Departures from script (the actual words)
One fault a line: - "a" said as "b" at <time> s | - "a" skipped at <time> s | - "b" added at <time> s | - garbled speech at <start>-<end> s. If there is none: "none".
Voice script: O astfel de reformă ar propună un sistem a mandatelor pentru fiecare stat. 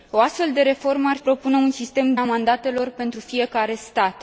none